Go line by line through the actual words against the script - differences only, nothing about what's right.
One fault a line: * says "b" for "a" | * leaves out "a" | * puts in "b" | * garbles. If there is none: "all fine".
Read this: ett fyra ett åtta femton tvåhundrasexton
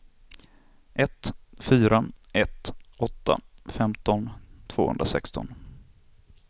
all fine